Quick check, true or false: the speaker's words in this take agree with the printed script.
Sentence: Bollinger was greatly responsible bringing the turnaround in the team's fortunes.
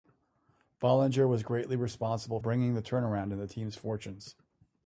true